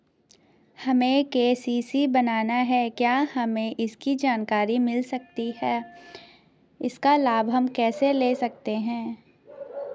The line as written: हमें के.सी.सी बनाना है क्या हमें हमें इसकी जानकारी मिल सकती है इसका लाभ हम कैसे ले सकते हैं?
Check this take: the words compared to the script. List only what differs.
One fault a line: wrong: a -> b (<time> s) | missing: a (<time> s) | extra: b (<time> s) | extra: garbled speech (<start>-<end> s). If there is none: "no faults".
missing: हमें (3.8 s)